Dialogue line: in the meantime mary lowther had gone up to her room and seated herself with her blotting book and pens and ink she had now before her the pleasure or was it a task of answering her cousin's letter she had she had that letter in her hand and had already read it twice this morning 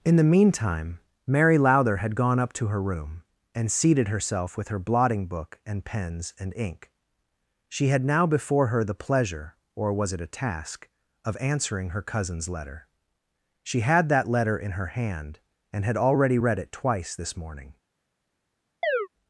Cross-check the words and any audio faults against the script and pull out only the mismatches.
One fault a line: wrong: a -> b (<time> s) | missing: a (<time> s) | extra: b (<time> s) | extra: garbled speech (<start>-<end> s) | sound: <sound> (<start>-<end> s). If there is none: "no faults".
missing: she had (14.1 s)
sound: chirp (18.8-19.1 s)